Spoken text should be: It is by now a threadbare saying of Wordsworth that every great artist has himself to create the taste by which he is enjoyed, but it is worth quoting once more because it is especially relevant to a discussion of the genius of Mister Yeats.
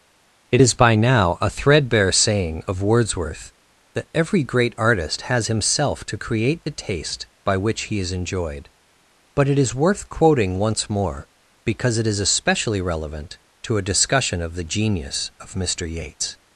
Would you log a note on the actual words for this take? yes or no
no